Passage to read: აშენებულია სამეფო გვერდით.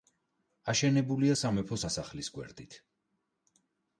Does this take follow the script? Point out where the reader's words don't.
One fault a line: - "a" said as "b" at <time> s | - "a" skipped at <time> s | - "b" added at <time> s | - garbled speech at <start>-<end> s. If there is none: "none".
- "სასახლის" added at 1.8 s